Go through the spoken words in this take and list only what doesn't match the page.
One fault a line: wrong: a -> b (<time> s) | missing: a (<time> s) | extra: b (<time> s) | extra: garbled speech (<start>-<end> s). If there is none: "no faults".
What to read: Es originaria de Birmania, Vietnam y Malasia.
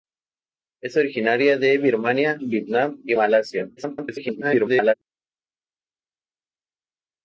extra: garbled speech (3.8-4.9 s)